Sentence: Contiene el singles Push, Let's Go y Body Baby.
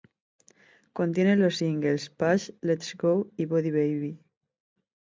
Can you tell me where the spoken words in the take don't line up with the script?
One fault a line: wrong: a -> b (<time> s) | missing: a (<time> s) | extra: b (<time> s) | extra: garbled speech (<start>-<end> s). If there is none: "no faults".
wrong: el -> los (1.4 s)